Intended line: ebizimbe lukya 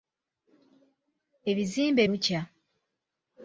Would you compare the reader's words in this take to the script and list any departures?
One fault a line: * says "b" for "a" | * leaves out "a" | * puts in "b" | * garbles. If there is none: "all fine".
all fine